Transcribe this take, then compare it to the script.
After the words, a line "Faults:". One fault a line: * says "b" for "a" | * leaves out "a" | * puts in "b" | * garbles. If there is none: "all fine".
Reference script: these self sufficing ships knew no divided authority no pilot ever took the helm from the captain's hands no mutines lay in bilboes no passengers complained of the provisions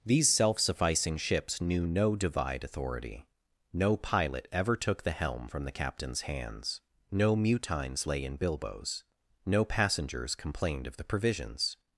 these self sufficing ships knew no divide authority no pilot ever took the helm from the captain's hands no mutines lay in bilboes no passengers complained of the provisions
Faults:
* says "divide" for "divided"